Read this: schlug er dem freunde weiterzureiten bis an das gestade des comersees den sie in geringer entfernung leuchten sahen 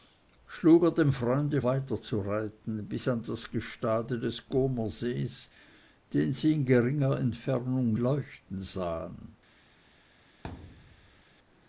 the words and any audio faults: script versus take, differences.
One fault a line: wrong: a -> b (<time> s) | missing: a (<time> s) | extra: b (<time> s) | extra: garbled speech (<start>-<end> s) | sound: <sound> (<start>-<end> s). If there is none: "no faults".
sound: thud (10.4-11.2 s)